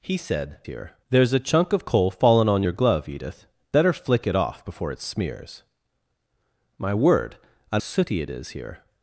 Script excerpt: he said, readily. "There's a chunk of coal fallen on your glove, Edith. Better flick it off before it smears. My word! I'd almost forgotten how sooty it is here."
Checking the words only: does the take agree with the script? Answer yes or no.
no